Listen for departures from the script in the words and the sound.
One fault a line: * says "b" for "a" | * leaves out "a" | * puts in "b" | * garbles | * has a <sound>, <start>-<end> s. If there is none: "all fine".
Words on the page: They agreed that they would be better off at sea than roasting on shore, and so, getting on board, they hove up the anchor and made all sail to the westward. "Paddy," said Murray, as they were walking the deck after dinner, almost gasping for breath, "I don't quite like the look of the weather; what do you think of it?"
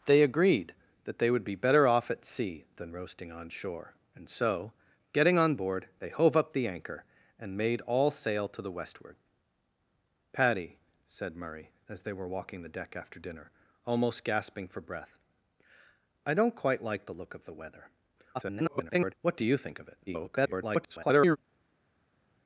* garbles
* garbles